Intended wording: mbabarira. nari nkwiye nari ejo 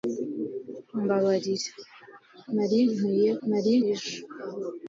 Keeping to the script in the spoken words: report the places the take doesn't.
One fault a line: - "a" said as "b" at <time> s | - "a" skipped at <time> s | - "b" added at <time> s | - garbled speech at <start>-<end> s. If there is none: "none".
none